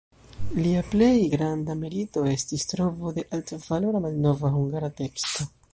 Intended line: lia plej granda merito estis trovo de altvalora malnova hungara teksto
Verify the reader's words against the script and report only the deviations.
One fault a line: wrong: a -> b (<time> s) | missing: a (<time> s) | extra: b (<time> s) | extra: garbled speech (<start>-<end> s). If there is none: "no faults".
no faults